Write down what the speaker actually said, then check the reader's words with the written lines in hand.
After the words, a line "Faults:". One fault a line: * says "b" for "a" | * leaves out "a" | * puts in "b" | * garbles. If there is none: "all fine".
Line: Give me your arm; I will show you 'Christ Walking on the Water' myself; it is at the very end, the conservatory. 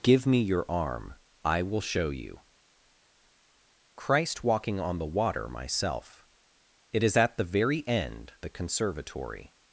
Give me your arm; I will show you 'Christ Walking on the Water' myself; it is at the very end, the conservatory.
Faults:
all fine